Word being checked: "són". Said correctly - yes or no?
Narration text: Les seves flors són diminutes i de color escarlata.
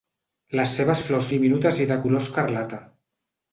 no